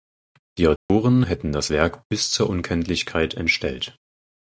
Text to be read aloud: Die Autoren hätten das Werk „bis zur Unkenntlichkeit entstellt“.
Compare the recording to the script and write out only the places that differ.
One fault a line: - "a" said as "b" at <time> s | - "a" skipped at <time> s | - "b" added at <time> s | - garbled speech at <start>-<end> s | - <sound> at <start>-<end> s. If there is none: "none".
- dropout at 0.8-0.9 s